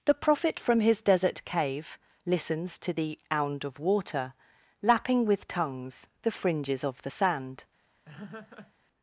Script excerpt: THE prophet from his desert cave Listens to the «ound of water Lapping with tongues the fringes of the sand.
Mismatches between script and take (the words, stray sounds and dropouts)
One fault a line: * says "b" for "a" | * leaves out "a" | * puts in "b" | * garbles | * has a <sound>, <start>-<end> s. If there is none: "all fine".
* has a laugh, 8.1-8.7 s